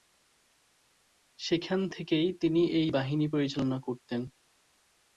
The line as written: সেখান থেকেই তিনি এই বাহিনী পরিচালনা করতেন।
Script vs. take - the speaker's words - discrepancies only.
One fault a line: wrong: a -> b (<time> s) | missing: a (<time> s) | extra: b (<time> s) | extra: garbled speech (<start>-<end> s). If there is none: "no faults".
no faults